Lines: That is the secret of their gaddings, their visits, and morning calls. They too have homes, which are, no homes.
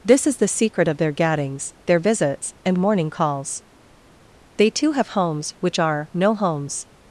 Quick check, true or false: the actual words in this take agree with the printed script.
false